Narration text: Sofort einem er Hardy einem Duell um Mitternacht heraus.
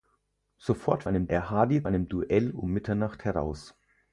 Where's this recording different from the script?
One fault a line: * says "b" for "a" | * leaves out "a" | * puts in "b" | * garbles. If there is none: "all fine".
all fine